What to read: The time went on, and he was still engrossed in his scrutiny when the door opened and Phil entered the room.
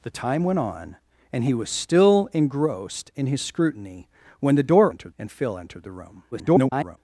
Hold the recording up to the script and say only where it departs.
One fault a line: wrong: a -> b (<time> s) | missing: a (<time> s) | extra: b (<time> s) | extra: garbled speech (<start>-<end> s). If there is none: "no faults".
wrong: opened -> entered (4.9 s)
extra: garbled speech (6.3-7.0 s)